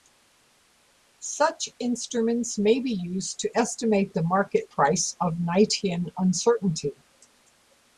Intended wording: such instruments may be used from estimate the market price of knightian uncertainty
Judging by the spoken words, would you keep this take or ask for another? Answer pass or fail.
fail